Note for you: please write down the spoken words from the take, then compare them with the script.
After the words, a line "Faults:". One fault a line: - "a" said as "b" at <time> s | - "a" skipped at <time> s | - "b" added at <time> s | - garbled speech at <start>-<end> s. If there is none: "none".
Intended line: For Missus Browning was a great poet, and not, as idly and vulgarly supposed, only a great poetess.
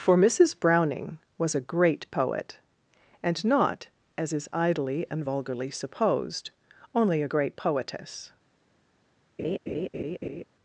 For Missus Browning was a great poet, and not, as is idly and vulgarly supposed, only a great poetess.
Faults:
- "is" added at 4.3 s